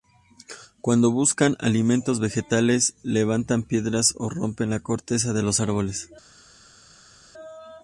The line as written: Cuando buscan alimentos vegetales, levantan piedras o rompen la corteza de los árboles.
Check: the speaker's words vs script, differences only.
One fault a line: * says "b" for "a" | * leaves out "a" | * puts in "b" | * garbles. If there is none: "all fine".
all fine